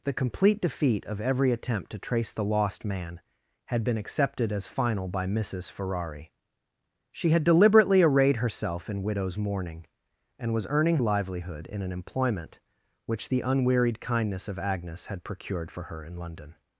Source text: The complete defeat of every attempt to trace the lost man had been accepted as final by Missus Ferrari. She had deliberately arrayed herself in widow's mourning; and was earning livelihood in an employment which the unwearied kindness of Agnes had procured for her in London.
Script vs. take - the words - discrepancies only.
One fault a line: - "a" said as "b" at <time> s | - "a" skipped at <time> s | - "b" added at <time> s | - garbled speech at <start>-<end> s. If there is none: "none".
none